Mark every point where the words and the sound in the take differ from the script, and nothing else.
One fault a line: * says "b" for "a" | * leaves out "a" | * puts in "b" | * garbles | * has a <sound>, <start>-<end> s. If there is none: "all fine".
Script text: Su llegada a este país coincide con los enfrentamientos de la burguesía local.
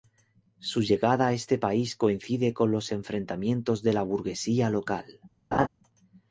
* has a laugh, 5.5-5.7 s